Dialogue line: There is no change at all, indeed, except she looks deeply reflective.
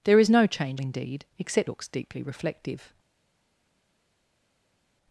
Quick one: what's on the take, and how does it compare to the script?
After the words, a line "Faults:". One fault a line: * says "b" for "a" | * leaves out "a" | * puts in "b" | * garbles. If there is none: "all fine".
There is no change indeed, except looks deeply reflective.
Faults:
* leaves out "at all"
* leaves out "she"